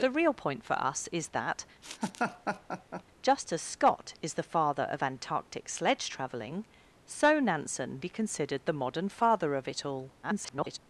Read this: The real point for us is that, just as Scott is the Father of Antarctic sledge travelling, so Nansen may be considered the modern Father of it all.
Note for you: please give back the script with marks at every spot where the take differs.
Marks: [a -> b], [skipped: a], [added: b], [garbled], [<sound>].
The real point for us is that, [laugh] just as Scott is the Father of Antarctic sledge travelling, so Nansen [skipped: may] be considered the modern Father of it all. [garbled]